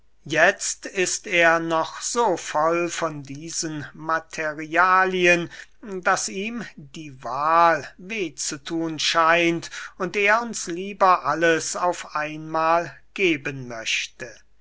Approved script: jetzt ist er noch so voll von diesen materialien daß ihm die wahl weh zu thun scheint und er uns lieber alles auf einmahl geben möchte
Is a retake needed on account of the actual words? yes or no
no